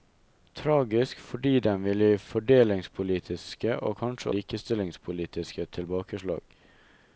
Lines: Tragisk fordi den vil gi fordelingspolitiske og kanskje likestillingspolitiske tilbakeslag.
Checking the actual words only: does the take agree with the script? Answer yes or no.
yes